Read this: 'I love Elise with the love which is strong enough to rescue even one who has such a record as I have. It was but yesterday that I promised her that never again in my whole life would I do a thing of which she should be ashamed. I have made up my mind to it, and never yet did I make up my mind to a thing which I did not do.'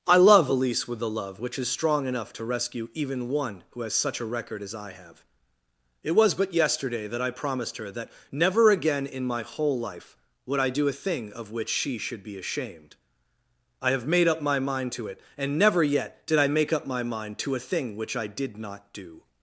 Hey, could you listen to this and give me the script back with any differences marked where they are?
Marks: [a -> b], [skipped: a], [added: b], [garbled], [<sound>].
'I love Elise with the love which is strong enough to rescue even one who has such a record as I have. It was but yesterday that I promised her that never again in my whole life would I do a thing of which she should be ashamed. I have made up my mind to it, and never yet did I make up my mind to a thing which I did not do.'